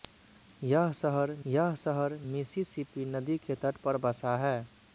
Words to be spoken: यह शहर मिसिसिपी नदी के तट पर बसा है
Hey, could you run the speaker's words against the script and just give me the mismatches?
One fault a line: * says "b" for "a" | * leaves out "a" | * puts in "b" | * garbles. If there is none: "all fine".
* puts in "यह शहर"